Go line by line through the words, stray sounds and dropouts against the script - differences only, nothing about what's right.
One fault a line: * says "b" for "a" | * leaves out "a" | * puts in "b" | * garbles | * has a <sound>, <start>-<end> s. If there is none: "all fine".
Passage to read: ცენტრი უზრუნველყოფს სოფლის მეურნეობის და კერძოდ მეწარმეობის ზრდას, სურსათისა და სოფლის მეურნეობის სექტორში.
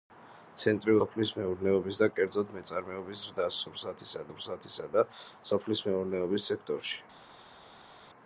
* leaves out "უზრუნველყოფს"
* puts in "სურსათისა"